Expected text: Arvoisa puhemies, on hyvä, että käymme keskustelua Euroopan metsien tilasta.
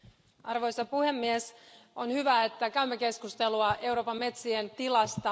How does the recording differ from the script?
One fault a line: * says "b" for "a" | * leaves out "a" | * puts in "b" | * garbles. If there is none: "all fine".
all fine